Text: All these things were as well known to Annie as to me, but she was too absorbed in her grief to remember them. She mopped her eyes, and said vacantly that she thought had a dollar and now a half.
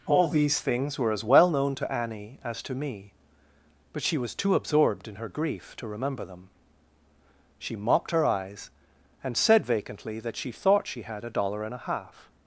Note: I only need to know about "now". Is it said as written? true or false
false